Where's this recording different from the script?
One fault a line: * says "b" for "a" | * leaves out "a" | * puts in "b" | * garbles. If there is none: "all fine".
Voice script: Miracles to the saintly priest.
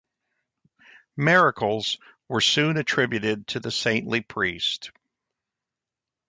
* puts in "were soon attributed"